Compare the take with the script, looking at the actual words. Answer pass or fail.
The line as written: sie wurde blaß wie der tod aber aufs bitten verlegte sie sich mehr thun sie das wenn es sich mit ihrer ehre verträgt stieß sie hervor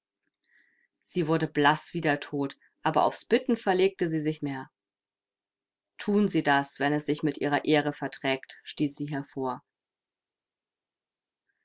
pass